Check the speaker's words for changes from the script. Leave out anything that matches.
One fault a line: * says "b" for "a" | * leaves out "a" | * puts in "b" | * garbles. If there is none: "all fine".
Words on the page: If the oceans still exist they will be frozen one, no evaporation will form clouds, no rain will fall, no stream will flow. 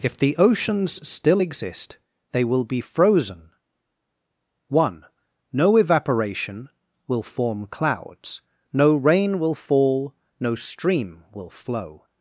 all fine